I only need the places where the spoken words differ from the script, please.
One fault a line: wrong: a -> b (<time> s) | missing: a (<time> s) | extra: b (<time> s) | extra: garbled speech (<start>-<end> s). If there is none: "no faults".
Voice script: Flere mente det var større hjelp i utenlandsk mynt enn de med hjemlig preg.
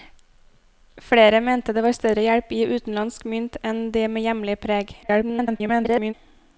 extra: garbled speech (5.0-6.1 s)